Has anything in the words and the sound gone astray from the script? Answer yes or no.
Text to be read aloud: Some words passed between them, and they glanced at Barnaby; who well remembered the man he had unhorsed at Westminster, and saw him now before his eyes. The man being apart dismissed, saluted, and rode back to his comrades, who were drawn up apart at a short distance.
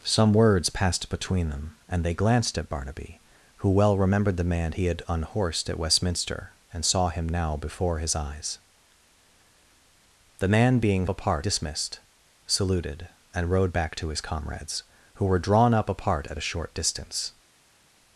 no